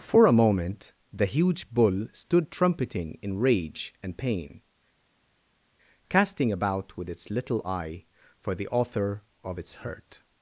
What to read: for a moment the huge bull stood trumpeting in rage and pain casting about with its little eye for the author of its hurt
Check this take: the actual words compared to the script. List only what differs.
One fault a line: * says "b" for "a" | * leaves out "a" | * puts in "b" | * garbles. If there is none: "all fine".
all fine